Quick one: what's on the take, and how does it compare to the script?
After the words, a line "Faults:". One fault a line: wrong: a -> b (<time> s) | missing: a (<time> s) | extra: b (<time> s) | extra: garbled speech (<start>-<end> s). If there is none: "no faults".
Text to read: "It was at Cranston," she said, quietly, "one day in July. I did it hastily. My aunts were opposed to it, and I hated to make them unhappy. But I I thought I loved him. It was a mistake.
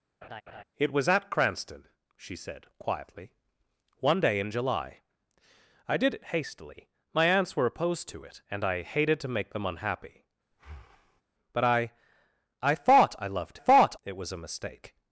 "It was at Cranston," she said, quietly, "one day in July. I did it hastily. My aunts were opposed to it, and I hated to make them unhappy. But I I thought I loved thought. It was a mistake.
Faults:
wrong: him -> thought (13.6 s)